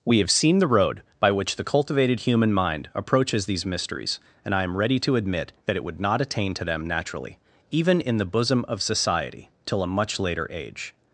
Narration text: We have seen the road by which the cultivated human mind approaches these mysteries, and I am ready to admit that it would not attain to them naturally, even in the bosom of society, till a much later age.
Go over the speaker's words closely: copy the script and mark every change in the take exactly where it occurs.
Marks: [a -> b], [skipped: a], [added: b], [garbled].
We have seen the road by which the cultivated human mind approaches these mysteries, and I am ready to admit that it would not attain to them naturally, even in the bosom of society, till a much later age.